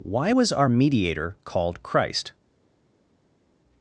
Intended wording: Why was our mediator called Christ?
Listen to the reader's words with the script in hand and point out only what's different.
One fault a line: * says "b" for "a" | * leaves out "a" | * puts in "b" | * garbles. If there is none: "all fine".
all fine